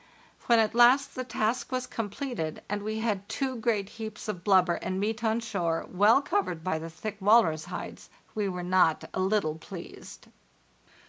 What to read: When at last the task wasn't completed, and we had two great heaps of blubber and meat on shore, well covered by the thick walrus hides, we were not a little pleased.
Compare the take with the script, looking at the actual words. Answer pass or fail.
fail